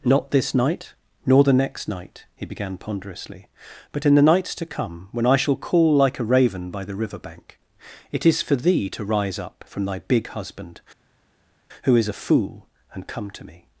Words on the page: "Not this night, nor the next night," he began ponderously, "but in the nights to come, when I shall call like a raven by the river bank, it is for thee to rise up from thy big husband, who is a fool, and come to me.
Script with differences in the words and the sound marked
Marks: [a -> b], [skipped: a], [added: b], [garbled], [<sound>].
"Not this night, nor the next night," he began ponderously, "but in the nights to come, when I shall call like a raven by the river bank, it is for thee to rise up from thy big husband, who is a fool, and come to me.